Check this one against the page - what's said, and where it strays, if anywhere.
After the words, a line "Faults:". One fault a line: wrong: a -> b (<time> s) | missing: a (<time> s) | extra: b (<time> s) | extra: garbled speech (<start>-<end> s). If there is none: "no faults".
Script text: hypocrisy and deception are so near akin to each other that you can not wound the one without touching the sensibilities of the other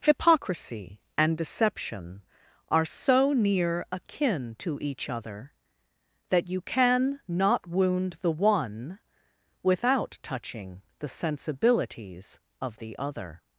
hypocrisy and deception are so near akin to each other that you can not wound the one without touching the sensibilities of the other
Faults:
no faults